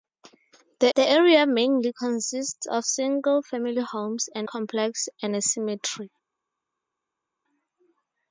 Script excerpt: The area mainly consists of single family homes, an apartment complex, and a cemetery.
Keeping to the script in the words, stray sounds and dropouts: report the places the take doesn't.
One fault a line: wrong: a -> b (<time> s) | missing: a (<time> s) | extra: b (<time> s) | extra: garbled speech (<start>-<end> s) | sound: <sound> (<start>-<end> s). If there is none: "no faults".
extra: the (0.9 s)
missing: apartment (4.5 s)